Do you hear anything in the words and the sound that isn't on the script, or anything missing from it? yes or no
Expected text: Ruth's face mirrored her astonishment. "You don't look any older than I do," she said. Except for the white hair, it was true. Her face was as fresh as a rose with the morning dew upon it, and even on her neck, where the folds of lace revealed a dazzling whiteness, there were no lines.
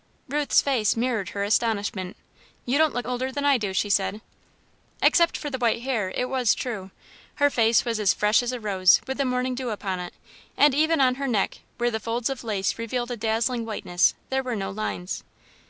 yes